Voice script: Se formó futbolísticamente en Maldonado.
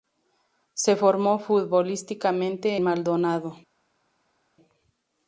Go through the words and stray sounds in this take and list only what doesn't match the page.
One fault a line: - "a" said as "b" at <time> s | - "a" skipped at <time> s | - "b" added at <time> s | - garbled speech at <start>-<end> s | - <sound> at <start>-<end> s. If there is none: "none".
- "en" skipped at 2.8 s